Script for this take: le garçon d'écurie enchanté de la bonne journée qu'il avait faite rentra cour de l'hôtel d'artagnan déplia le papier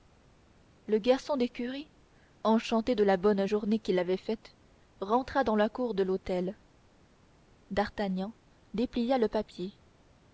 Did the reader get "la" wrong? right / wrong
right